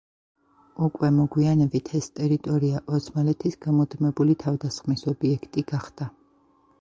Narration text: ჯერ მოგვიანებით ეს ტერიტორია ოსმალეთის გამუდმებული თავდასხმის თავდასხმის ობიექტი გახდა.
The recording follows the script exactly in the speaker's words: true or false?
false